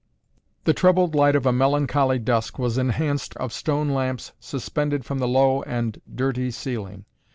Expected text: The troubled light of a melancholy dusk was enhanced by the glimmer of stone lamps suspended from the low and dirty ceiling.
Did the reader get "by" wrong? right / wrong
wrong